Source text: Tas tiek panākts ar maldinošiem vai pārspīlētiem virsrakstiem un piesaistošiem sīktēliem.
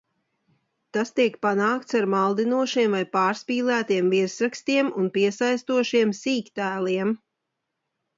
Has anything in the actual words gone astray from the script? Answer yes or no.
no